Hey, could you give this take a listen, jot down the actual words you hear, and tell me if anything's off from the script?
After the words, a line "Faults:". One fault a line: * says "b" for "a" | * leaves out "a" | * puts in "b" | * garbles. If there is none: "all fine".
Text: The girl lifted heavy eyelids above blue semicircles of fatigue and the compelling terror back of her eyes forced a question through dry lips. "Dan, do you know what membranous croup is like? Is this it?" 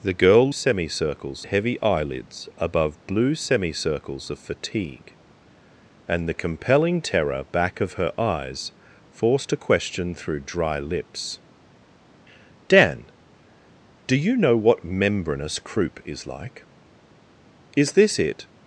The girl semicircles heavy eyelids above blue semicircles of fatigue and the compelling terror back of her eyes forced a question through dry lips. "Dan, do you know what membranous croup is like? Is this it?"
Faults:
* says "semicircles" for "lifted"